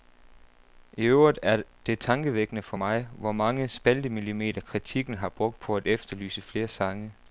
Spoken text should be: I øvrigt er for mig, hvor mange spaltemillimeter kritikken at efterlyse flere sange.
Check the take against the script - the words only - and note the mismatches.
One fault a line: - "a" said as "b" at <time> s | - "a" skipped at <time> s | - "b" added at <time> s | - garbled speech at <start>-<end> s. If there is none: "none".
- "det tankevækkende" added at 1.9 s
- "har brugt på" added at 5.1 s